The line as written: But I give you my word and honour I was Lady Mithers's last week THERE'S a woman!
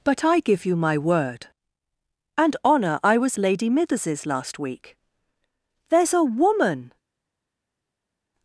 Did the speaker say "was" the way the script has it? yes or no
yes